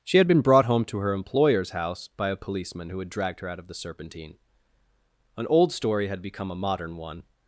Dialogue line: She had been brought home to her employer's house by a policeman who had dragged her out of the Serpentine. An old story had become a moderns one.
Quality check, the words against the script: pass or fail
fail